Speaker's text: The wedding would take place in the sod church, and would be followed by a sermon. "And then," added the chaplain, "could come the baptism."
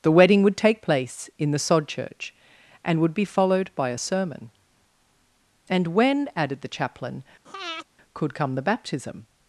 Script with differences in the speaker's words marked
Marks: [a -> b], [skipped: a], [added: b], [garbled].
The wedding would take place in the sod church, and would be followed by a sermon. "And [then," -> when] added the chaplain, "could come the baptism."